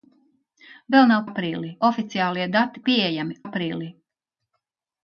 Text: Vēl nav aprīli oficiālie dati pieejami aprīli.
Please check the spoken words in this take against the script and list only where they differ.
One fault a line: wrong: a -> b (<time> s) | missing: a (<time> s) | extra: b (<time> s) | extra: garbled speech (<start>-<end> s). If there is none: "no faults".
no faults